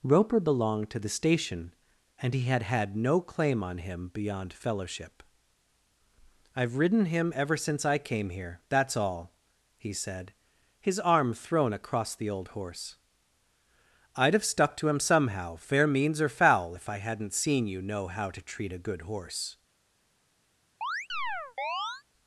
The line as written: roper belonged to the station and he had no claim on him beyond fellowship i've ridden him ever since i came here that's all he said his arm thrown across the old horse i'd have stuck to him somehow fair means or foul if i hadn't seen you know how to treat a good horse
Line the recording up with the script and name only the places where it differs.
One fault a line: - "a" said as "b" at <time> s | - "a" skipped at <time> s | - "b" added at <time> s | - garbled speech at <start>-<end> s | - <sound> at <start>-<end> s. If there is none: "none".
- "had" added at 2.6 s
- chirp at 20.8-22.0 s